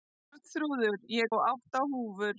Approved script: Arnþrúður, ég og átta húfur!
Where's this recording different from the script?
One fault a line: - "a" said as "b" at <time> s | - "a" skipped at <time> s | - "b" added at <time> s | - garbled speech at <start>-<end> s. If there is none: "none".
none